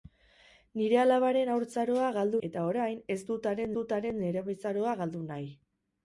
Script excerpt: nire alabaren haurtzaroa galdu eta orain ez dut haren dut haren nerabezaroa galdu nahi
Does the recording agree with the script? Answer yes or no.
yes